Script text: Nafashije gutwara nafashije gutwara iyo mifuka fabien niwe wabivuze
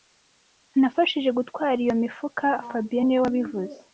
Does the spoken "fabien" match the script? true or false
true